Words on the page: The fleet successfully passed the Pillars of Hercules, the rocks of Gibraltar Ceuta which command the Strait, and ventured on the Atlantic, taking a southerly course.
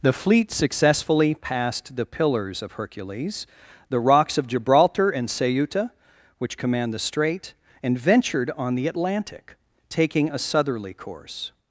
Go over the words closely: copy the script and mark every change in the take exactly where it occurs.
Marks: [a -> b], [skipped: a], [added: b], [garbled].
The fleet successfully passed the Pillars of Hercules, the rocks of Gibraltar [added: and] Ceuta which command the Strait, and ventured on the Atlantic, taking a southerly course.